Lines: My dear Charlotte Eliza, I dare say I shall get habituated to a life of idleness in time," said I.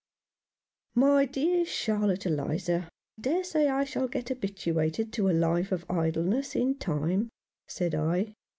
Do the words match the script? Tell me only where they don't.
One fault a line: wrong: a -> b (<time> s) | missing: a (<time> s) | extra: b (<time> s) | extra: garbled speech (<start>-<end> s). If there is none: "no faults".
missing: I (2.9 s)